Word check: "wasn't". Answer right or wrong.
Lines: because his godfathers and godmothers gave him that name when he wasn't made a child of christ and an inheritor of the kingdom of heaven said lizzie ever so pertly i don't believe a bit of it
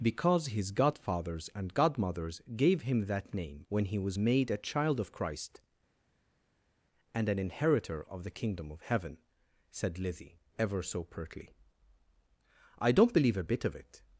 wrong